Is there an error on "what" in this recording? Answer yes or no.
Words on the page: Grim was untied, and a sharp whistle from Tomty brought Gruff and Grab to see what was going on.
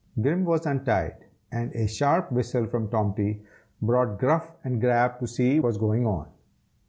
yes